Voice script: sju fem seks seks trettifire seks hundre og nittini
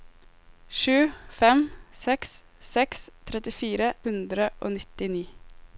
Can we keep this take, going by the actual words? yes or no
no